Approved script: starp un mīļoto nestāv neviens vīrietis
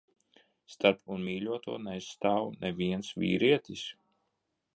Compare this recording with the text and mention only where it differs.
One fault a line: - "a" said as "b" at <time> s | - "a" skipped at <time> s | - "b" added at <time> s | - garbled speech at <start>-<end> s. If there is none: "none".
none